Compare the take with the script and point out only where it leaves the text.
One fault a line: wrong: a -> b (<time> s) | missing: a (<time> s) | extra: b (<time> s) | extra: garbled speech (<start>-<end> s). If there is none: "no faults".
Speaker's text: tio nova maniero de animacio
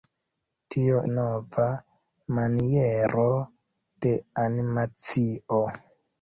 no faults